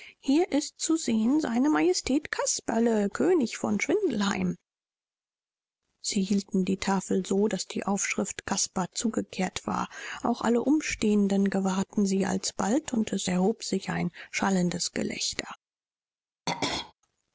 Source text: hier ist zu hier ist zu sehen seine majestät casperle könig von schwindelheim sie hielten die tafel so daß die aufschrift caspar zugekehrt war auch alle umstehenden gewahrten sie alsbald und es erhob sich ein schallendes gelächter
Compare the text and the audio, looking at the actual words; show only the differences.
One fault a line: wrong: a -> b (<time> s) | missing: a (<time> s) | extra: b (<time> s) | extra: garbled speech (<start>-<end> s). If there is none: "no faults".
missing: hier ist zu (1.0 s)